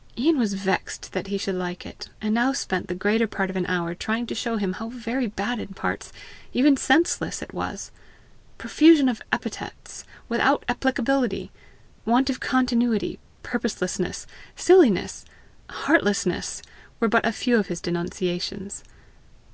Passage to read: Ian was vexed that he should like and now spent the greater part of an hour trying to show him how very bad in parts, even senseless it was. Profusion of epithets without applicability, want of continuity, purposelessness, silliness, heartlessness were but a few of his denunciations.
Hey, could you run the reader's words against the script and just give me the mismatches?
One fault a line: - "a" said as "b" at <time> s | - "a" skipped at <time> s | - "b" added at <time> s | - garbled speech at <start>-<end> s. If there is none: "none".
- "it" added at 1.9 s